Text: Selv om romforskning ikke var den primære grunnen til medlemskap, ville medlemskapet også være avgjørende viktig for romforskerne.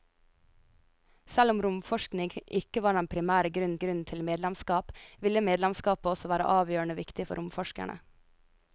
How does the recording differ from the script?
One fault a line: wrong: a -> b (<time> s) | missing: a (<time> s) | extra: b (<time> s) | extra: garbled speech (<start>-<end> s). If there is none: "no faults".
extra: grunnen (3.8 s)